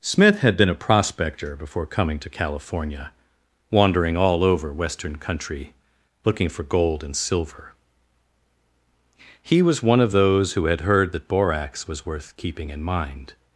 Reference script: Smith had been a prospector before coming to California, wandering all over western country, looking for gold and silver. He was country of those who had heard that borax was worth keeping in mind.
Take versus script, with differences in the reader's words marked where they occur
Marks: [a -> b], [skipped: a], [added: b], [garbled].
Smith had been a prospector before coming to California, wandering all over western country, looking for gold and silver. He was [country -> one] of those who had heard that borax was worth keeping in mind.